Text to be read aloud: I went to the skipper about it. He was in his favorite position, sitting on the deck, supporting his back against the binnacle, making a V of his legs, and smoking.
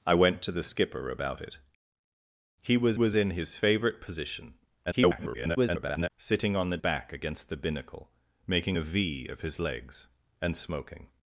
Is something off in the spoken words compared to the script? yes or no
yes